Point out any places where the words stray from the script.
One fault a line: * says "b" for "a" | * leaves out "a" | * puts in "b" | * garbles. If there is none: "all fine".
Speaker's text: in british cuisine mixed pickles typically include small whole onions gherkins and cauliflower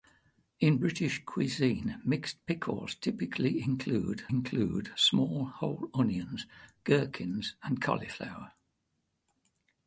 * puts in "include"